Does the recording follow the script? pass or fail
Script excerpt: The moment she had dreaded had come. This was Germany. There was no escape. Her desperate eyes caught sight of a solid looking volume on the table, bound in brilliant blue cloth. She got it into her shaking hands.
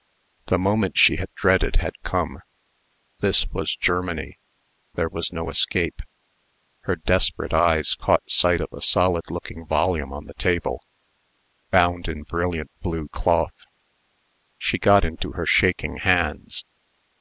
fail